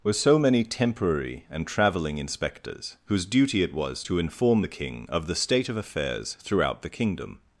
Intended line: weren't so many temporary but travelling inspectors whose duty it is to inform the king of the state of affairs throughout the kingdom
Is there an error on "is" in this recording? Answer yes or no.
yes